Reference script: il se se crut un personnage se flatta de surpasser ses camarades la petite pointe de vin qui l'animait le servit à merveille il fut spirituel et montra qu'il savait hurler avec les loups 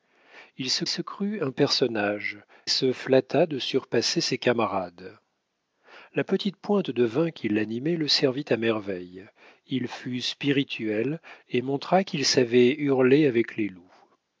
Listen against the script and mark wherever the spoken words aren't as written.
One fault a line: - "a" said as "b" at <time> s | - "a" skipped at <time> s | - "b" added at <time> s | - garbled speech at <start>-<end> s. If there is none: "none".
none